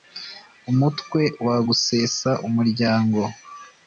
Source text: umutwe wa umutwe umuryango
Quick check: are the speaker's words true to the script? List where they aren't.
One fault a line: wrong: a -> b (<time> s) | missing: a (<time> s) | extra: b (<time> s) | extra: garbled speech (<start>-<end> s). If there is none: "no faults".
wrong: umutwe -> gusesa (1.7 s)